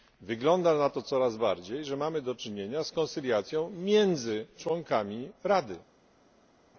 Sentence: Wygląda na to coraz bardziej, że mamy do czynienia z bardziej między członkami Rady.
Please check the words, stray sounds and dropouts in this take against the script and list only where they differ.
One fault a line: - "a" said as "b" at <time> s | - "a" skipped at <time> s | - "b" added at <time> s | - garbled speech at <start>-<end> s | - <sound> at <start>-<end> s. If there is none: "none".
- "bardziej" said as "koncyliacją" at 2.9 s